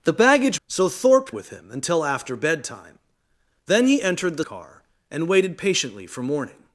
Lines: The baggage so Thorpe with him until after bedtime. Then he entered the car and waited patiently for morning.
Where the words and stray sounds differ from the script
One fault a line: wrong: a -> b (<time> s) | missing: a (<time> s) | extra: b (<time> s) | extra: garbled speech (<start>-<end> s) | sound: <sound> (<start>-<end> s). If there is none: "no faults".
no faults